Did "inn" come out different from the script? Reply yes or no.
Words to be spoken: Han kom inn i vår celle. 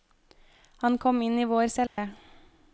no